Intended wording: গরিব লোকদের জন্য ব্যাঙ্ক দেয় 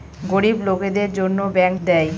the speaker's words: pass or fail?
pass